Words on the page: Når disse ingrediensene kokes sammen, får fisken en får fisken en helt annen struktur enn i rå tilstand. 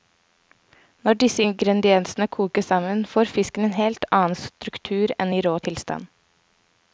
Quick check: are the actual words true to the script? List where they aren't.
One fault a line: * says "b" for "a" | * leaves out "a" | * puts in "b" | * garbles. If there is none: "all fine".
* leaves out "får fisken en"